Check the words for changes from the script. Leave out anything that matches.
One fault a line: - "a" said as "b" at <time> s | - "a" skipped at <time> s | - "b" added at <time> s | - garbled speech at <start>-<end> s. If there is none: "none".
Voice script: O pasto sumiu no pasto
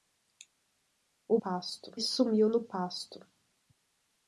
none